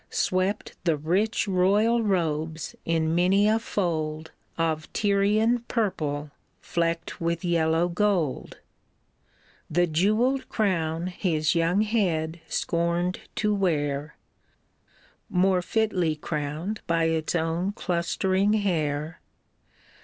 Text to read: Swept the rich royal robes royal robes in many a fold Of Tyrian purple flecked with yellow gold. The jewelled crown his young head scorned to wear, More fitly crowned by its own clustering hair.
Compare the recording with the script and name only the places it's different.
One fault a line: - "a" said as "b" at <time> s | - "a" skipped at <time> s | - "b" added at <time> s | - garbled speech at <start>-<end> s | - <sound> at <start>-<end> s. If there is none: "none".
- "royal robes" skipped at 2.8 s